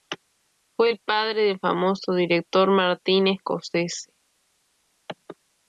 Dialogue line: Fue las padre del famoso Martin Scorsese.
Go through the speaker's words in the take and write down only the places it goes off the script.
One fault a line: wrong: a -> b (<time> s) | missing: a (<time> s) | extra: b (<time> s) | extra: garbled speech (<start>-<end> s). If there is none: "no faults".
wrong: las -> el (0.9 s)
extra: director (2.1 s)